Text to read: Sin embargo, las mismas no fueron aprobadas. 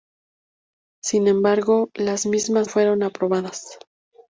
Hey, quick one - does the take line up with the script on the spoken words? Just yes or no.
no